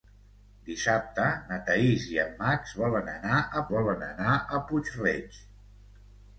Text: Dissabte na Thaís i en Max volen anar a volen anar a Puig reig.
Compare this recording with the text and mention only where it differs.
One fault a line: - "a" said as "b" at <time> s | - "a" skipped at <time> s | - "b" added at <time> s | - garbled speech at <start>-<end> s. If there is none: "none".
none